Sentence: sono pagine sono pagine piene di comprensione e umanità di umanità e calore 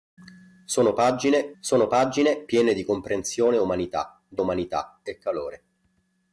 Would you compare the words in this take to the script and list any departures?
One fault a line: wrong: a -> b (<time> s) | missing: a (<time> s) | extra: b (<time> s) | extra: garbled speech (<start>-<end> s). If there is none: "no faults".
no faults